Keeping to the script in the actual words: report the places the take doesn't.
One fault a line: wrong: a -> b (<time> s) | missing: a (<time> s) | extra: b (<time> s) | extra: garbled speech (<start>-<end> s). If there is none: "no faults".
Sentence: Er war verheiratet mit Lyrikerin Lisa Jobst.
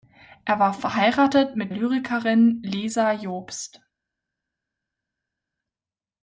no faults